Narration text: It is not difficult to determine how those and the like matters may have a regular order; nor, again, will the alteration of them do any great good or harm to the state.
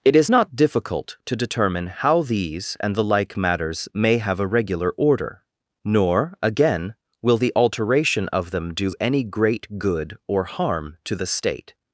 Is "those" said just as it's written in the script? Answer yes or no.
no